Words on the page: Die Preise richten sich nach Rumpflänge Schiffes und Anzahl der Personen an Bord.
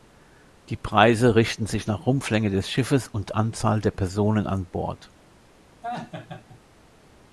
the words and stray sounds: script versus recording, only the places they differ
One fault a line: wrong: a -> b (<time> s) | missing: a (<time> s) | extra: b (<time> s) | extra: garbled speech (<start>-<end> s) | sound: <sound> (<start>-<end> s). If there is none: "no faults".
extra: des (2.5 s)
sound: laugh (5.8-6.6 s)